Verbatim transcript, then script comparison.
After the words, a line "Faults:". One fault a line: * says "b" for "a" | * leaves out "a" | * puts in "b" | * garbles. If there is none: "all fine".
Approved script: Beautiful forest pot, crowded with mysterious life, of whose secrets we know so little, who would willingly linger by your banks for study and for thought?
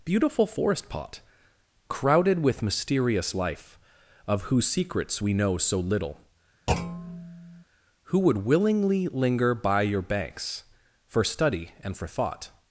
Beautiful forest pot, crowded with mysterious life, of whose secrets we know so little, who would willingly linger by your banks for study and for thought?
Faults:
all fine